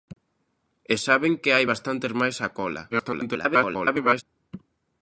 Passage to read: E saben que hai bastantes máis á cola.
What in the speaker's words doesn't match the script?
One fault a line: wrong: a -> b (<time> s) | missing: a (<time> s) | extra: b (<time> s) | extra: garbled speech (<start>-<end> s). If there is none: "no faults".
extra: garbled speech (2.9-4.2 s)